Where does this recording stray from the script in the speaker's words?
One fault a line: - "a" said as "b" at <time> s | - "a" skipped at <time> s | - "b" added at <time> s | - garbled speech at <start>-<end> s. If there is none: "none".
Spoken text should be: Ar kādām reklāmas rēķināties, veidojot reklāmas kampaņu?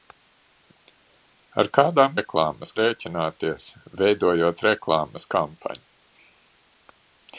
none